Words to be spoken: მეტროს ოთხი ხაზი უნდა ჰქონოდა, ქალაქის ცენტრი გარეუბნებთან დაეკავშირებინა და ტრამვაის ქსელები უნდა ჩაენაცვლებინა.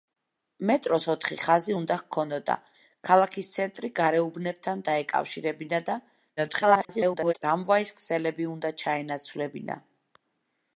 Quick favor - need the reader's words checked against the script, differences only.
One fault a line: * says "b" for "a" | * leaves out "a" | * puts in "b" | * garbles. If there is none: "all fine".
* garbles